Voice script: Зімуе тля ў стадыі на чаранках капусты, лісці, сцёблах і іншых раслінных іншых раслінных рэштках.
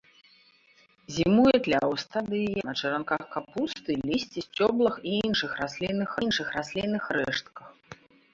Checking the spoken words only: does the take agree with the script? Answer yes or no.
yes